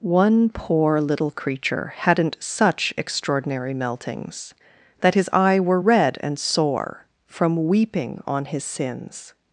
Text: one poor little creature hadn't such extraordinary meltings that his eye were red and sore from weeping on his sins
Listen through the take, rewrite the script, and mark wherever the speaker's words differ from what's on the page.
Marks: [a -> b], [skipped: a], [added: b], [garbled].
one poor little creature hadn't such extraordinary meltings that his eye were red and sore from weeping on his sins